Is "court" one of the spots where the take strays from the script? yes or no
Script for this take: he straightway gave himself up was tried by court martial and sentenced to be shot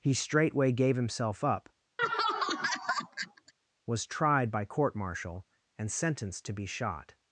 no